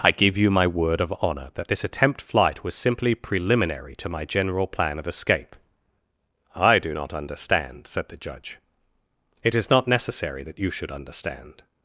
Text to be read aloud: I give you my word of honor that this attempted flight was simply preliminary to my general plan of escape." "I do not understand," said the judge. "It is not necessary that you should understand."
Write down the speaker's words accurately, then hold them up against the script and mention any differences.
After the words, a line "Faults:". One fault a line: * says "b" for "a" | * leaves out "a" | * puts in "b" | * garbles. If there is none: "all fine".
I give you my word of honor that this attempt flight was simply preliminary to my general plan of escape." "I do not understand," said the judge. "It is not necessary that you should understand."
Faults:
* says "attempt" for "attempted"